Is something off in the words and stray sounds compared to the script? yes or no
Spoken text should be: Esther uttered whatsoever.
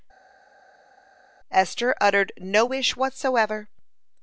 yes